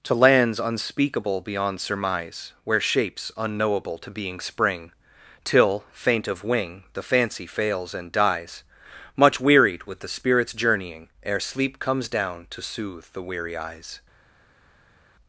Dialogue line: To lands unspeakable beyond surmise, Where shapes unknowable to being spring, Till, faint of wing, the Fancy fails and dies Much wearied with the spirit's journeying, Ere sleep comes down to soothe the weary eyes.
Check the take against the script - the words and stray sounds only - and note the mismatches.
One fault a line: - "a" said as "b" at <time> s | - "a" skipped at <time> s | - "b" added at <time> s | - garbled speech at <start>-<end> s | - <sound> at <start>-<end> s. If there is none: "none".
none